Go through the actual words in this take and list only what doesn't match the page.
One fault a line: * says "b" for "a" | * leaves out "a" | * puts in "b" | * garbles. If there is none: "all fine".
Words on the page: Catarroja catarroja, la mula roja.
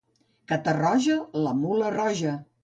* leaves out "catarroja"